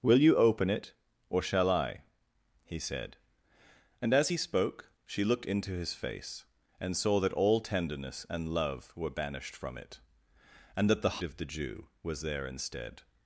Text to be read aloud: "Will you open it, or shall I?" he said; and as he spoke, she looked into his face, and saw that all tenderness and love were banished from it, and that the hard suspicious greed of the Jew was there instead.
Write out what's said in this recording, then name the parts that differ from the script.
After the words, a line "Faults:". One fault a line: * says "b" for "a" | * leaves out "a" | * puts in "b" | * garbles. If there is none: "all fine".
"Will you open it, or shall I?" he said; and as he spoke, she looked into his face, and saw that all tenderness and love were banished from it, and that the of the Jew was there instead.
Faults:
* leaves out "hard suspicious greed"